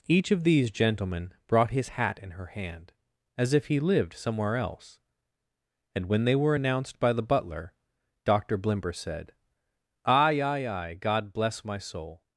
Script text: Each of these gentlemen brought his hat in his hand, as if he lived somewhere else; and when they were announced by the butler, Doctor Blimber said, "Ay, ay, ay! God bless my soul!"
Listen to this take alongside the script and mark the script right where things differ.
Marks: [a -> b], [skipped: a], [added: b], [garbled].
Each of these gentlemen brought his hat in [his -> her] hand, as if he lived somewhere else; and when they were announced by the butler, Doctor Blimber said, "Ay, ay, ay! God bless my soul!"